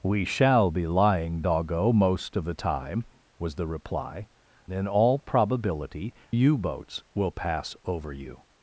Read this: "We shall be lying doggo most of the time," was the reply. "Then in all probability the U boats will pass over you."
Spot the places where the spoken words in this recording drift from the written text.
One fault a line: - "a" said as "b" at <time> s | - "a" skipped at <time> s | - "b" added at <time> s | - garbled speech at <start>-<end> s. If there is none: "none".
- "Then" skipped at 4.3 s
- "the" skipped at 6.1 s